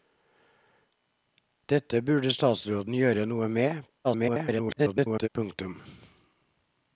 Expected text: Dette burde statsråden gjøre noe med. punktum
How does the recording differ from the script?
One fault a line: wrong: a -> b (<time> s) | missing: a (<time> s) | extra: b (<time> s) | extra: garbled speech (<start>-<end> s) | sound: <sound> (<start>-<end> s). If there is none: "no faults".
extra: garbled speech (4.0-5.3 s)